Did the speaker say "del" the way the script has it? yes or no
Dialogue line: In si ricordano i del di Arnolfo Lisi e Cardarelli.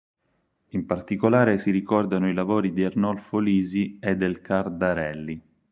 no